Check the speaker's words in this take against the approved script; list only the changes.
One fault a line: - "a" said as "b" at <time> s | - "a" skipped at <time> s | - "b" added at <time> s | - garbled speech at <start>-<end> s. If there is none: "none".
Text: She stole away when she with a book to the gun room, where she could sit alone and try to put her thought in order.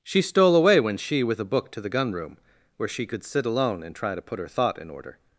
none